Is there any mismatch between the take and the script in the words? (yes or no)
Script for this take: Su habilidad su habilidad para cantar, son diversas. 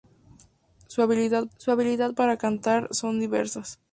no